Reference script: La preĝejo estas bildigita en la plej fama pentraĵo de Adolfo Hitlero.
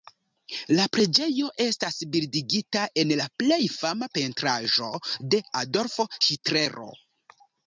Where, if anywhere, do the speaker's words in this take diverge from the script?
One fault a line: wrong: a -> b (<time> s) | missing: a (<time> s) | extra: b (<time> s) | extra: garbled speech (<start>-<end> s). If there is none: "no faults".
no faults